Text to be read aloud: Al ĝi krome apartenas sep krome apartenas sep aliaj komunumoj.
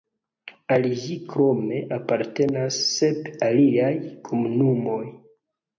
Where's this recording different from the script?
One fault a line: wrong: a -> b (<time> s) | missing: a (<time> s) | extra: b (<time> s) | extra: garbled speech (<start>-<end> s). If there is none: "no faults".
missing: krome apartenas sep (3.3 s)